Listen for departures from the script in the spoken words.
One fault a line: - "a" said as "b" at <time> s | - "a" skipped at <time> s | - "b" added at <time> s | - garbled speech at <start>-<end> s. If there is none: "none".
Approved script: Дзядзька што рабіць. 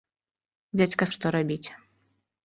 none